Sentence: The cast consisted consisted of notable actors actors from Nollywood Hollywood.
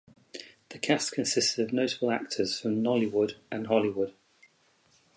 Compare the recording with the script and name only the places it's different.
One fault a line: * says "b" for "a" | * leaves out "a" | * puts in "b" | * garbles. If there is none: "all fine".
* leaves out "consisted"
* leaves out "actors"
* puts in "and"